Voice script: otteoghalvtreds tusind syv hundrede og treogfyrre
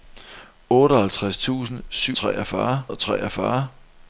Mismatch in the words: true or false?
true